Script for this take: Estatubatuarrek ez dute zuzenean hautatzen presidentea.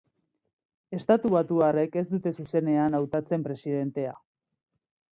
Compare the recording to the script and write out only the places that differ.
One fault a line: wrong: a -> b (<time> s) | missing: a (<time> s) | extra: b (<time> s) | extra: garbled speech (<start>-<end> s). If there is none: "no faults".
no faults